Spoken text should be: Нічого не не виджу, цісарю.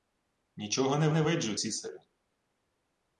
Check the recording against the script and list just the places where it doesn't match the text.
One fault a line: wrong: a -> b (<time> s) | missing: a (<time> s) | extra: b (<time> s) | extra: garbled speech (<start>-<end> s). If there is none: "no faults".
no faults